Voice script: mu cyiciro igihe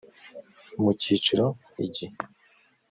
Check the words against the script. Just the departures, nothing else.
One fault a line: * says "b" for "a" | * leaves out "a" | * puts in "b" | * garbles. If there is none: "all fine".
all fine